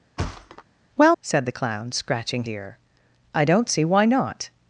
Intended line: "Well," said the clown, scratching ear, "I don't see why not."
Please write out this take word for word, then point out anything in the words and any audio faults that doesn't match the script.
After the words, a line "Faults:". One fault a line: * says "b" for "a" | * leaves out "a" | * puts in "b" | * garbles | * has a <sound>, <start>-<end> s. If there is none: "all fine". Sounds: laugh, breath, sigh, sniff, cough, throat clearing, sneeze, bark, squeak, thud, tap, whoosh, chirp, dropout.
"Well," said the clown, scratching ear, "I don't see why not."
Faults:
* has a thud, 0.2-0.6 s